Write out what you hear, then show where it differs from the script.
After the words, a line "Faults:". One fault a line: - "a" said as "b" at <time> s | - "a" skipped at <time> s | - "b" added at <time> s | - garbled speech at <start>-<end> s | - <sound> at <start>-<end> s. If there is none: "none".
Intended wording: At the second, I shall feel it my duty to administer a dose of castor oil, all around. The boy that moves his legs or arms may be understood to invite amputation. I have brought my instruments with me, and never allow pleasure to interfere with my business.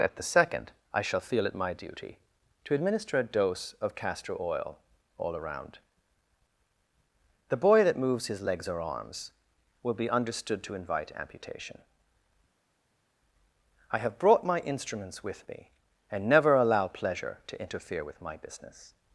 At the second, I shall feel it my duty to administer a dose of castor oil, all around. The boy that moves his legs or arms will be understood to invite amputation. I have brought my instruments with me, and never allow pleasure to interfere with my business.
Faults:
- "may" said as "will" at 9.8 s